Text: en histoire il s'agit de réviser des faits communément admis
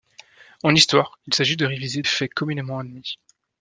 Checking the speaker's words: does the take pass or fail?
fail